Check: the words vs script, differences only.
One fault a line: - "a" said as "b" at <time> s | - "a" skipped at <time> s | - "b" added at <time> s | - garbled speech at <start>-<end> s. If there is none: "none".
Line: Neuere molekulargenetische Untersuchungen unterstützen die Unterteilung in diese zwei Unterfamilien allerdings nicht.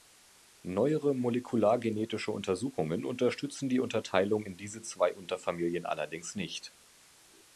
none